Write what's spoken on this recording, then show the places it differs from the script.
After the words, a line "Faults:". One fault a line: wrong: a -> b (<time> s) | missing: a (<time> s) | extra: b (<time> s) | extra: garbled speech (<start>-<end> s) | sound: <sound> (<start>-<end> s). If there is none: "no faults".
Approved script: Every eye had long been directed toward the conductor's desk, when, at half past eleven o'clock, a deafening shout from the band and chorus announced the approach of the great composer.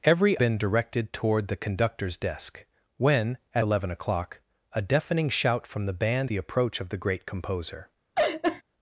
Every been directed toward the conductor's desk, when, at eleven o'clock, a deafening shout from the band the approach of the great composer.
Faults:
missing: eye had long (0.4 s)
missing: half past (3.7 s)
missing: and chorus announced (6.3 s)
sound: laugh (8.1-8.6 s)